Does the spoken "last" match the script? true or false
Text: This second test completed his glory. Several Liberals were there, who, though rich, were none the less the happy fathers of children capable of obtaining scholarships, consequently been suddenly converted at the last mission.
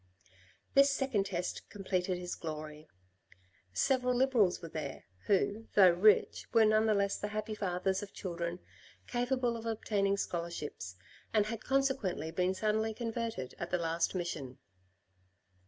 true